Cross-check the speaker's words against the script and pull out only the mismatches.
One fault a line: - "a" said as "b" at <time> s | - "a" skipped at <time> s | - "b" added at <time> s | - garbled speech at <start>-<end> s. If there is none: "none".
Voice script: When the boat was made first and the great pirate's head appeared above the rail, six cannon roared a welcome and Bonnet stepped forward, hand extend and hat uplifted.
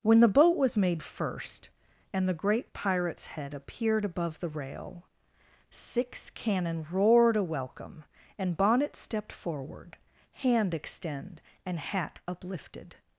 none